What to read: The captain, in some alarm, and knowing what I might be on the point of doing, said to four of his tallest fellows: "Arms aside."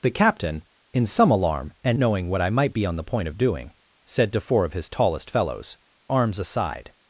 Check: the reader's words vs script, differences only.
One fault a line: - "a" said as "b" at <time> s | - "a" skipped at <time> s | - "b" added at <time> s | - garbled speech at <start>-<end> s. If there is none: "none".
none